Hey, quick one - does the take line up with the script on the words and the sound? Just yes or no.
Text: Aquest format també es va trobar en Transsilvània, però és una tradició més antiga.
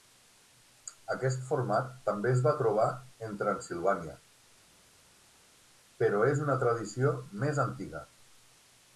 yes